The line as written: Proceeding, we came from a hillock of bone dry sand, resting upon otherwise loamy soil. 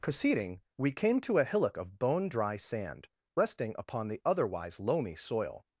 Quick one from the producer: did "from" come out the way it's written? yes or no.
no